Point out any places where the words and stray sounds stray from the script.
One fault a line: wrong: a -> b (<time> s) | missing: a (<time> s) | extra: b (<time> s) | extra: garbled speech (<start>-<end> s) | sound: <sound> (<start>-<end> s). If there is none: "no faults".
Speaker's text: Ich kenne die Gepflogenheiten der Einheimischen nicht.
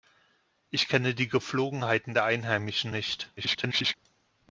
extra: garbled speech (3.4-4.0 s)